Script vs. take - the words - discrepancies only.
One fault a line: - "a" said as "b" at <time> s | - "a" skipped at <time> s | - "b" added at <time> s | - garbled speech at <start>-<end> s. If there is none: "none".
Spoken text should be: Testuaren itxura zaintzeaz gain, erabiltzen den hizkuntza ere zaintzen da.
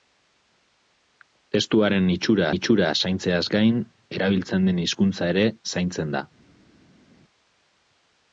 - "itxura" added at 2.5 s